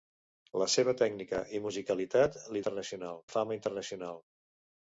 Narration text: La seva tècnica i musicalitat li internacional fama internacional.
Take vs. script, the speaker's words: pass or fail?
pass